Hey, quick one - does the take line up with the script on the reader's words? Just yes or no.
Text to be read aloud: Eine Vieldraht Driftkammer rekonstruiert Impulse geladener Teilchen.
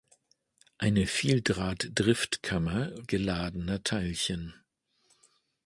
no